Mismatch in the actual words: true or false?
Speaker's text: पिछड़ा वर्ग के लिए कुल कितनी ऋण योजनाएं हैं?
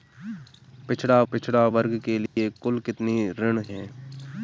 true